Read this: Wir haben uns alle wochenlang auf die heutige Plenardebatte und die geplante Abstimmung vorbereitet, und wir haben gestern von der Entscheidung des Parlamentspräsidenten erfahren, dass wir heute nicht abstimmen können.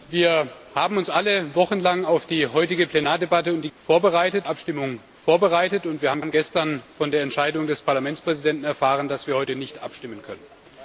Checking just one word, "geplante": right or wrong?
wrong